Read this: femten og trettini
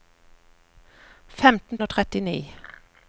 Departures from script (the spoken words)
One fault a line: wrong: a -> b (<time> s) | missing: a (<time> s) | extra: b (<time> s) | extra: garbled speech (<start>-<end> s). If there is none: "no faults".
no faults